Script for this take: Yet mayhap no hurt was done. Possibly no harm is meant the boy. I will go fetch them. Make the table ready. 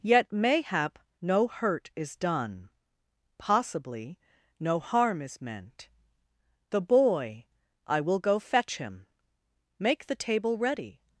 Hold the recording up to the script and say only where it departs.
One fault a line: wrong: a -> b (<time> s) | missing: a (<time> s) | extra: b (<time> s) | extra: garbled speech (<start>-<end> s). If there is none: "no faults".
wrong: was -> is (1.9 s)
wrong: them -> him (8.8 s)